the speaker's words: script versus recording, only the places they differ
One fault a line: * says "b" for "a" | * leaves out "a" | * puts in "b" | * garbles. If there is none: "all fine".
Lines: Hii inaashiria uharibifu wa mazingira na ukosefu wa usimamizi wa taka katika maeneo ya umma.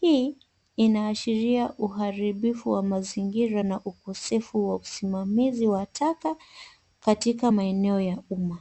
all fine